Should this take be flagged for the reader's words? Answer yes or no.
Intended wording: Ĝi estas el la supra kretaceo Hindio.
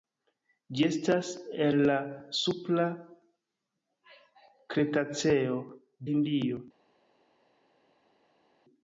no